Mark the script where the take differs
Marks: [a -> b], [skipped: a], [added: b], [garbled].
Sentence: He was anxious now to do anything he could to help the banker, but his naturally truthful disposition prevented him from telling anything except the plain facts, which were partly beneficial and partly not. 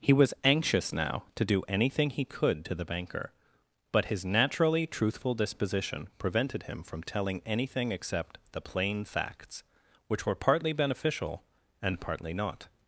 He was anxious now to do anything he could to [skipped: help] the banker, but his naturally truthful disposition prevented him from telling anything except the plain facts, which were partly beneficial and partly not.